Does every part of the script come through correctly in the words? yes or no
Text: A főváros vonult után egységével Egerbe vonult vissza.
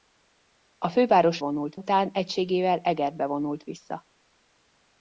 yes